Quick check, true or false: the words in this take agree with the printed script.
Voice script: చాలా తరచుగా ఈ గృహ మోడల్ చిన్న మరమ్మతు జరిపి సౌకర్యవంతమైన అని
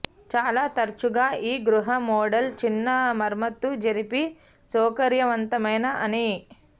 true